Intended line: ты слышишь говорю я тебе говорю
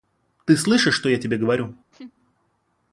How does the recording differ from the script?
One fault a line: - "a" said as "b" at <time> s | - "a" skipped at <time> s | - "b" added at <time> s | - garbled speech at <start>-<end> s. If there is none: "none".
- "говорю" said as "что" at 0.9 s